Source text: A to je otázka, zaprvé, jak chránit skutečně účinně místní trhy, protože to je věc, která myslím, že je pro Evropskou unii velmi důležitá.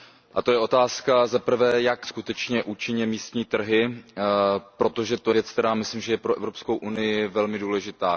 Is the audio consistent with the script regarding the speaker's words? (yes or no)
no